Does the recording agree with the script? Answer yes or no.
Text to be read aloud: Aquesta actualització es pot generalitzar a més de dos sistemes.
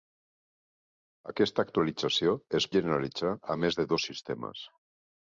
no